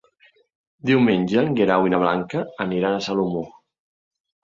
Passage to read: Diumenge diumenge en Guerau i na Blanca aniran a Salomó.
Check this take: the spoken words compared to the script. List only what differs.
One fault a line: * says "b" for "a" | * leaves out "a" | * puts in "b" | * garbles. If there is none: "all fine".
* leaves out "diumenge"